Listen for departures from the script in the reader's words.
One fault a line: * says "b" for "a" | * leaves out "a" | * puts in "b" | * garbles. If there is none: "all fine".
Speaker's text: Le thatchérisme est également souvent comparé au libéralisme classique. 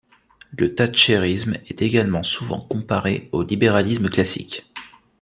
all fine